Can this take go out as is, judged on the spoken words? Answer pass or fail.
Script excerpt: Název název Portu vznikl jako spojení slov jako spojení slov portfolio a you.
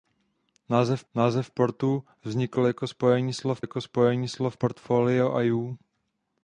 pass